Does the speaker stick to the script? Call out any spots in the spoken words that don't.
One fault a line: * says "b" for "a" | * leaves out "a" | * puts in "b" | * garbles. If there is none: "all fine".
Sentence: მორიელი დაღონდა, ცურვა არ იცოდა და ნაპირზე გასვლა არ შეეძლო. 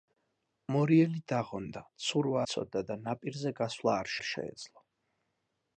* leaves out "არ"
* puts in "არ"